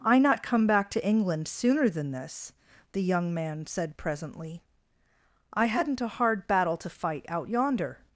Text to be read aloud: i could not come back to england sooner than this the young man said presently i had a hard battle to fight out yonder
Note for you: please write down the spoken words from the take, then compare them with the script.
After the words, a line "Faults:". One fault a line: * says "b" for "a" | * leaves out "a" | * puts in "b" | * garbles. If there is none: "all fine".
i not come back to england sooner than this the young man said presently i hadn't a hard battle to fight out yonder
Faults:
* leaves out "could"
* says "hadn't" for "had"